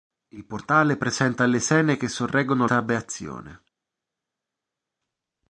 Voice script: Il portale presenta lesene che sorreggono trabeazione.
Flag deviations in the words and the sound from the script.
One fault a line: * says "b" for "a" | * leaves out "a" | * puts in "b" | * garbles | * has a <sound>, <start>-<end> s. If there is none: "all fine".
all fine